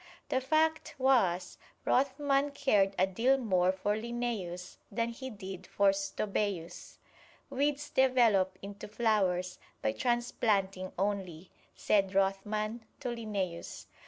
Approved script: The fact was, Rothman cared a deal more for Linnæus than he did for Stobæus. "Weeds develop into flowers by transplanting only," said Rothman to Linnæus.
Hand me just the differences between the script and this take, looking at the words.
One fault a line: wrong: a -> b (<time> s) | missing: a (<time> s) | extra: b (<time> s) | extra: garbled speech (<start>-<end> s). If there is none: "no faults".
no faults